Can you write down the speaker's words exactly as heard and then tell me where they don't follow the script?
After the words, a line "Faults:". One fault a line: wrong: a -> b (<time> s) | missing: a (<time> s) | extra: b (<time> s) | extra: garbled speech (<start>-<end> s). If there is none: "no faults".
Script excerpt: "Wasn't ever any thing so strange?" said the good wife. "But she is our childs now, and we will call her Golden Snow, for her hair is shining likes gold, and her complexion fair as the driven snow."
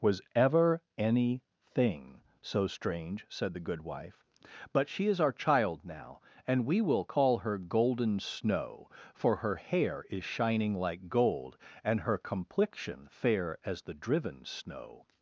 "Was ever any thing so strange?" said the good wife. "But she is our child now, and we will call her Golden Snow, for her hair is shining like gold, and her complexion fair as the driven snow."
Faults:
wrong: Wasn't -> Was (0.0 s)
wrong: childs -> child (5.3 s)
wrong: likes -> like (10.8 s)